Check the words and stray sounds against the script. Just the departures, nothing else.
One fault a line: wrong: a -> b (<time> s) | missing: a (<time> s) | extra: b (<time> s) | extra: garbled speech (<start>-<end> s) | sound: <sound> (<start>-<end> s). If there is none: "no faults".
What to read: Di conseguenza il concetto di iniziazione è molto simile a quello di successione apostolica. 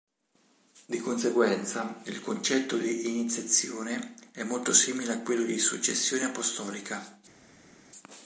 no faults